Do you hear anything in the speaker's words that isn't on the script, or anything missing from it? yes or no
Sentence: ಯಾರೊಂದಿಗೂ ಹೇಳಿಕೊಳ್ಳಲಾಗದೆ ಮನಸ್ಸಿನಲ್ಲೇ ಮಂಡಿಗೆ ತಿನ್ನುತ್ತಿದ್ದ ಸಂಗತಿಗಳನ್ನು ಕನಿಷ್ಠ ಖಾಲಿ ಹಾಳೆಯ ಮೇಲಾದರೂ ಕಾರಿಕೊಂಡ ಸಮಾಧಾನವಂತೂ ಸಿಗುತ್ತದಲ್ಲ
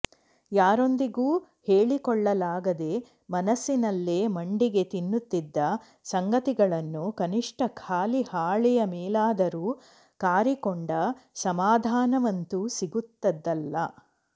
no